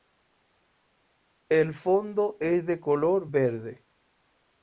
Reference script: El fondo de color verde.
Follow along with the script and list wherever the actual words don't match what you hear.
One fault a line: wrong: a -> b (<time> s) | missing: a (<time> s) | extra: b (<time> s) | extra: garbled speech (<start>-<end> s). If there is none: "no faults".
extra: es (2.4 s)